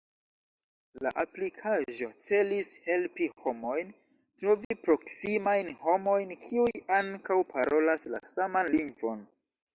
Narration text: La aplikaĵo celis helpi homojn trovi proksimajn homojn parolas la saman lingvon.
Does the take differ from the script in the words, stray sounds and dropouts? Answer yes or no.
yes